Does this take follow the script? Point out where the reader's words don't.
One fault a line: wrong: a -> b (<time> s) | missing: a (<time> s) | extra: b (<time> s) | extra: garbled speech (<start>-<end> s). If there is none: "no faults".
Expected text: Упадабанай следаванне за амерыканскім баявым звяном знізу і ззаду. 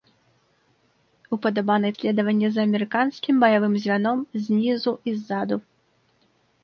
no faults